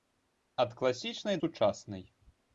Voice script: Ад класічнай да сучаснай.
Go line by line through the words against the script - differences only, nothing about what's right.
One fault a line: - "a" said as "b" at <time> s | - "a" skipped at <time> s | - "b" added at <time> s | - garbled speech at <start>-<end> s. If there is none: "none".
- "да" skipped at 1.4 s